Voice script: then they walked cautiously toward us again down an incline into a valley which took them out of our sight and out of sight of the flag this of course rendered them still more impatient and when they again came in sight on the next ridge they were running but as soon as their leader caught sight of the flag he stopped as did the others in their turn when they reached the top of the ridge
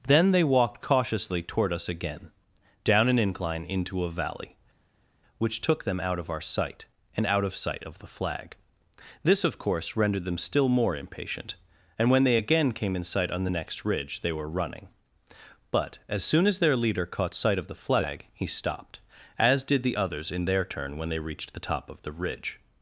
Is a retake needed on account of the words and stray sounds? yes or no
no